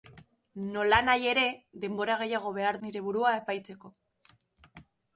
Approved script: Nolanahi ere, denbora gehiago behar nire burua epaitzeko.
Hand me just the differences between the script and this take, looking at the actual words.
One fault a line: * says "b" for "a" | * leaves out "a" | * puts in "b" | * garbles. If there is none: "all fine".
all fine